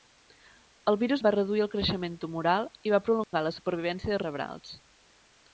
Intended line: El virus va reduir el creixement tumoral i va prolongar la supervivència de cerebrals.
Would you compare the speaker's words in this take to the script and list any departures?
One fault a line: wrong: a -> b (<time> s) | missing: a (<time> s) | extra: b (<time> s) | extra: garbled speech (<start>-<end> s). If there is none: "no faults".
no faults